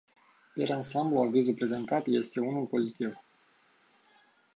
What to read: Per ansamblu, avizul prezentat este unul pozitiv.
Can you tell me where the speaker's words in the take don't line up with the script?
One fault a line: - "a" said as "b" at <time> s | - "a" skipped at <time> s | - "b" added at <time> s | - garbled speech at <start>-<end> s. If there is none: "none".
none